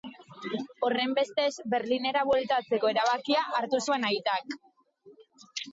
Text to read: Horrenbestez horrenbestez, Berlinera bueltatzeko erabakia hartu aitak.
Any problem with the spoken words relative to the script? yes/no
yes